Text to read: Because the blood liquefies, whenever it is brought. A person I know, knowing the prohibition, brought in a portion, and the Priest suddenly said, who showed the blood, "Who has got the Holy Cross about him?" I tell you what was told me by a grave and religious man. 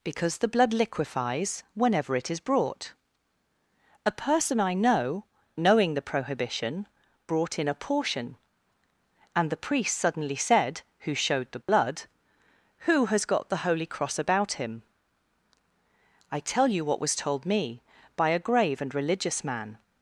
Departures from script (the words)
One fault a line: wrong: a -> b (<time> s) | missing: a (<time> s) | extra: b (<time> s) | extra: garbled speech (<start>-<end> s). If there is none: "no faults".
no faults